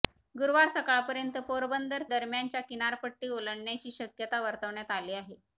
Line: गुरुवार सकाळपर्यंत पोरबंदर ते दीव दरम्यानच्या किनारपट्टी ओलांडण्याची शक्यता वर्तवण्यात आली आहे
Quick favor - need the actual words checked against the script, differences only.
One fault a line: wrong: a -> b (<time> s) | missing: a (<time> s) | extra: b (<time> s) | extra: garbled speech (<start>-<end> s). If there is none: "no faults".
missing: ते दीव (2.0 s)